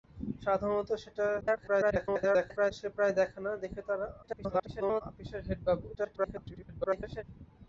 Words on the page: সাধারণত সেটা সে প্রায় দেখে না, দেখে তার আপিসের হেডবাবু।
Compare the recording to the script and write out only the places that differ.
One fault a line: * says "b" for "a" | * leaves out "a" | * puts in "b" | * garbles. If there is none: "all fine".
* garbles
* garbles
* garbles